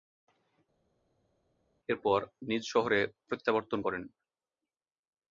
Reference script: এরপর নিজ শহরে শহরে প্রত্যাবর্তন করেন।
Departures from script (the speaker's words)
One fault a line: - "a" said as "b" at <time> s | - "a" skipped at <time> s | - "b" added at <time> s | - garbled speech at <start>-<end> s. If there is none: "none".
- "শহরে" skipped at 3.0 s